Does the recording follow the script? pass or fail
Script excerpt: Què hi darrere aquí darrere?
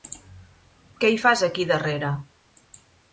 fail